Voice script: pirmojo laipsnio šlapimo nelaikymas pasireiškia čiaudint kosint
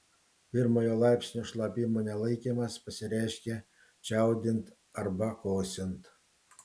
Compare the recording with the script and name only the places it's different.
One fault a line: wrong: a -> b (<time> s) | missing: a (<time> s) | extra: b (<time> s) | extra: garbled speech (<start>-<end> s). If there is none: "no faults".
extra: arba (5.0 s)